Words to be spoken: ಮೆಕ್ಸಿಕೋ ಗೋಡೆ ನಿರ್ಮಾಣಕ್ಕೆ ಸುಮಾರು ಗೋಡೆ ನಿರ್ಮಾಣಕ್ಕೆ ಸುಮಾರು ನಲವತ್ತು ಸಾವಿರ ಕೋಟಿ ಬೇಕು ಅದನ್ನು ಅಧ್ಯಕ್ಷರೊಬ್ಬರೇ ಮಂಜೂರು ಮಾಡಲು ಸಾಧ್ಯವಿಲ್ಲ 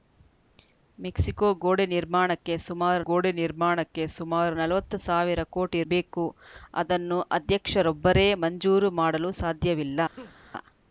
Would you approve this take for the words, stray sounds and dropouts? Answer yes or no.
no